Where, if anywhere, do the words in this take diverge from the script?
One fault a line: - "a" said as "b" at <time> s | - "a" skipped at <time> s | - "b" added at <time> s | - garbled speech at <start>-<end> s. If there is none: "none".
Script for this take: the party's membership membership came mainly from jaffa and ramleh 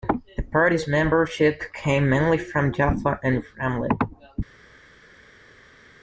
- "membership" skipped at 1.6 s